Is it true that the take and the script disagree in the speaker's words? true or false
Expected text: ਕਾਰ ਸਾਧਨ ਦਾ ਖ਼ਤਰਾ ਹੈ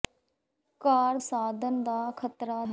false